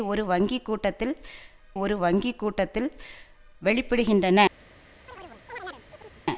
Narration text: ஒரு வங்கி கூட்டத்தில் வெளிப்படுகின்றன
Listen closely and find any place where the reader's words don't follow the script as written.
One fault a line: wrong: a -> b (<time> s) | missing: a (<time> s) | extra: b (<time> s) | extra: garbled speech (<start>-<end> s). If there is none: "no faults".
extra: ஒரு வங்கி கூட்டத்தில் (1.8 s)